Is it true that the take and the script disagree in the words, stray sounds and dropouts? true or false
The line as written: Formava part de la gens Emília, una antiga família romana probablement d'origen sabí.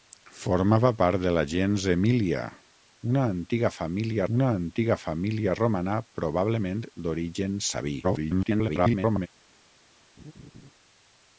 true